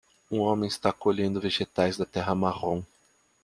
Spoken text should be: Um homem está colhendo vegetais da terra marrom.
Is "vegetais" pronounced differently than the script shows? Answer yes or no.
no